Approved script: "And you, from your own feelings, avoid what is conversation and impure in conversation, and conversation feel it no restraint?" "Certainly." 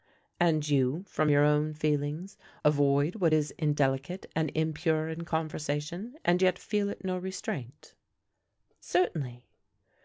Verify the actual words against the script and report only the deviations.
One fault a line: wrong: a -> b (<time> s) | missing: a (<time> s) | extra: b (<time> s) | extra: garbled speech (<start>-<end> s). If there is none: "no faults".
wrong: conversation -> indelicate (3.6 s)
wrong: conversation -> yet (6.4 s)